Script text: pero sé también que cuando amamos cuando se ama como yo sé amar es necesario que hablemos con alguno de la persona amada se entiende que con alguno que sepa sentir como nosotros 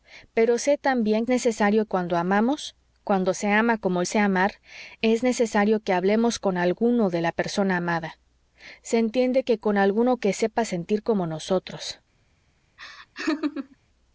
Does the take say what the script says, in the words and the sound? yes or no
no